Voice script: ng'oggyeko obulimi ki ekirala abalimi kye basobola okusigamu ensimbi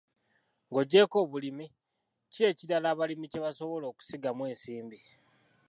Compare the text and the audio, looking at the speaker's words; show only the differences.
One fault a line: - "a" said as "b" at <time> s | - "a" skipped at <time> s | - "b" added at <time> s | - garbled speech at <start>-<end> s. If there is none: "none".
none